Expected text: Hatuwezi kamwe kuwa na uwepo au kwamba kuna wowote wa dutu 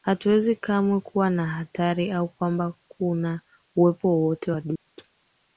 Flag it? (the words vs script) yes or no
yes